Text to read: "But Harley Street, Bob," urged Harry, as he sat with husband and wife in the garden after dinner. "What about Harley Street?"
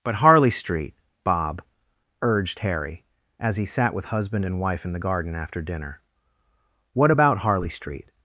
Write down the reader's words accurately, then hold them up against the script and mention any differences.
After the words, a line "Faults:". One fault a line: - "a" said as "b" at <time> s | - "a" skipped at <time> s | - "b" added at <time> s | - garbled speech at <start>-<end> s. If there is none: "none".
"But Harley Street, Bob," urged Harry, as he sat with husband and wife in the garden after dinner. "What about Harley Street?"
Faults:
none